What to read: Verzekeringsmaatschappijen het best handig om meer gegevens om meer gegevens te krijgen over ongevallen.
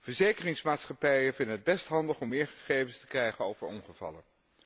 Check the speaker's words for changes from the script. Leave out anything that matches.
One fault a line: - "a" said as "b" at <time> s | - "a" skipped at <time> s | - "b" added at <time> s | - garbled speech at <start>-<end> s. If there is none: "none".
- "vinden" added at 1.3 s
- "om meer gegevens" skipped at 3.0 s